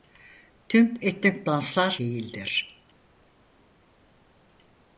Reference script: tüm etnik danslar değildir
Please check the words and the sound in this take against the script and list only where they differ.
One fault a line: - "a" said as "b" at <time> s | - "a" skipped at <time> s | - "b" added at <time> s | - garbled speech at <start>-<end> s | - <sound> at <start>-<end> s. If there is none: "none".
none